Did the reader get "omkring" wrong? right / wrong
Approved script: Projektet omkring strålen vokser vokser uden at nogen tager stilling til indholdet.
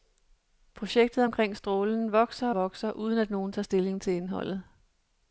right